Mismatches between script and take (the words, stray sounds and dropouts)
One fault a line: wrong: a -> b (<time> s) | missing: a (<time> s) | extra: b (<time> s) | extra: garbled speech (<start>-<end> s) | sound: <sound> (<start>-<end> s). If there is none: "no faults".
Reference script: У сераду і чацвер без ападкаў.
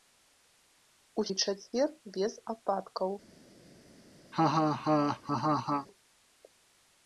missing: сераду (1.2 s)
sound: laugh (4.3-5.9 s)